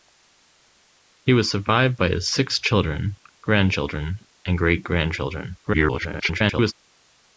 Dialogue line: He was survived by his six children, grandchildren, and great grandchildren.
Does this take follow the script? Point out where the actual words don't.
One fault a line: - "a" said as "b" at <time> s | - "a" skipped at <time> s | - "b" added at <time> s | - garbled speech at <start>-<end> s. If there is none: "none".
- garbled speech at 5.6-6.7 s